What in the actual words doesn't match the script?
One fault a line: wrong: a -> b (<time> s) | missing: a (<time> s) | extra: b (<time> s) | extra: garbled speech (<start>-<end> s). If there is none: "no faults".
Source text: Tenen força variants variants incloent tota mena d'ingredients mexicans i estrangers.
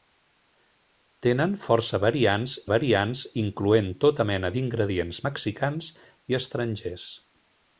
no faults